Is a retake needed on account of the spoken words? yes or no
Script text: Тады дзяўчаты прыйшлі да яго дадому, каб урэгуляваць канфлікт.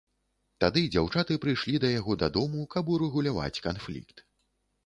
no